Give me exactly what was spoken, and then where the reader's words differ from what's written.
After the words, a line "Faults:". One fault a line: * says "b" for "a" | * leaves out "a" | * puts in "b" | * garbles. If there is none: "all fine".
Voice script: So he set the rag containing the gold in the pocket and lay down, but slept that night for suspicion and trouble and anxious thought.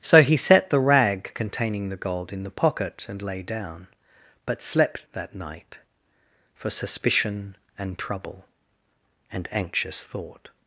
So he set the rag containing the gold in the pocket and lay down, but slept that night for suspicion and trouble and anxious thought.
Faults:
all fine